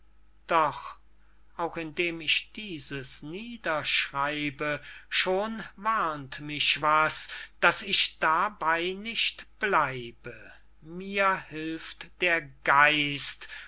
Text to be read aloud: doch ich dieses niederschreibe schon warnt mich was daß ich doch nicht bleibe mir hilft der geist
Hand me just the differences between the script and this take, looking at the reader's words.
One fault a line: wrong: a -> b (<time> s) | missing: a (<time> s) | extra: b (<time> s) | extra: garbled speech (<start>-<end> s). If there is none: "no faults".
extra: auch indem (1.6 s)
wrong: doch -> dabey (8.2 s)